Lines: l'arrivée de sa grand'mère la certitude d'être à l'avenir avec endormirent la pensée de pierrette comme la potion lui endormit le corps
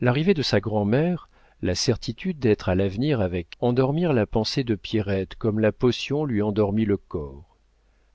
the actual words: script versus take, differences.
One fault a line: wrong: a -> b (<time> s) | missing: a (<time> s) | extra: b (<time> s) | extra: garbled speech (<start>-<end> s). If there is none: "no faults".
no faults